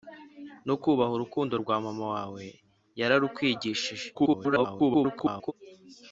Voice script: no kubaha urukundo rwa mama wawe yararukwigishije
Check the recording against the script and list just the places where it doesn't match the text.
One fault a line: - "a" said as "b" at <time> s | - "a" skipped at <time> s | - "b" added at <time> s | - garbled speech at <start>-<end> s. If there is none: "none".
- garbled speech at 4.1-5.5 s